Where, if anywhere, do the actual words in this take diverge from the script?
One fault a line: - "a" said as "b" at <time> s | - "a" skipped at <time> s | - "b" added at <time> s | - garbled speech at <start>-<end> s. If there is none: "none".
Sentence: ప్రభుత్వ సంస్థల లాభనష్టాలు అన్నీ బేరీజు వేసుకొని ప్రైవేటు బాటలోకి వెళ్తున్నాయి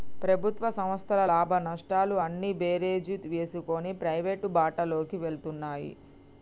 none